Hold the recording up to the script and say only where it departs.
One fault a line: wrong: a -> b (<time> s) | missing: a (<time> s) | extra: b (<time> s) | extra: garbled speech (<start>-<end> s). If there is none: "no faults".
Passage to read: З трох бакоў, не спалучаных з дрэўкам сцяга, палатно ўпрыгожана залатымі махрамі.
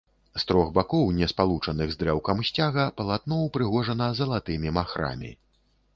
no faults